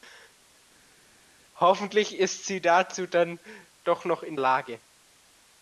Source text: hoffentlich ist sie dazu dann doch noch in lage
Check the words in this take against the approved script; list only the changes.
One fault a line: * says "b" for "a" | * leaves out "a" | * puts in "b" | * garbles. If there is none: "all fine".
all fine